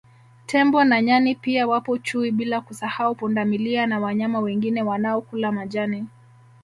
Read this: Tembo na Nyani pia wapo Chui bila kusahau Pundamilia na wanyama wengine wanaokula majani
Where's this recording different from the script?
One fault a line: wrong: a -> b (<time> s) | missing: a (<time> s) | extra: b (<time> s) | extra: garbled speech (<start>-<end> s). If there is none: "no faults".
no faults